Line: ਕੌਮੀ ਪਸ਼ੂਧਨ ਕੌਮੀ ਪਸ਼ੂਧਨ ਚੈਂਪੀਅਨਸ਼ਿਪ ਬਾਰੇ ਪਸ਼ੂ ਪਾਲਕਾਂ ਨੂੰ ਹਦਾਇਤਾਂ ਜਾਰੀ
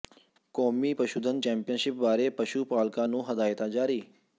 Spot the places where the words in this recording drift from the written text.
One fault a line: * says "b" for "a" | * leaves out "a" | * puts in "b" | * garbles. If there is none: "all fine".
* leaves out "ਕੌਮੀ ਪਸ਼ੂਧਨ"